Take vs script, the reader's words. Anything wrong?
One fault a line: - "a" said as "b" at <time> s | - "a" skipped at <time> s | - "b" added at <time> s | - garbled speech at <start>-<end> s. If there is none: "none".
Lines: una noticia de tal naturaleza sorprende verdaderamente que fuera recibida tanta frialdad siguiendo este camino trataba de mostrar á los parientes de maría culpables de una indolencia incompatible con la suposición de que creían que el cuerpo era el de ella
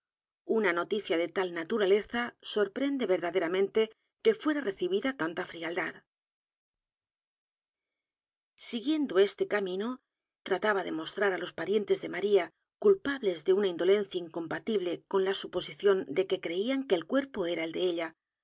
none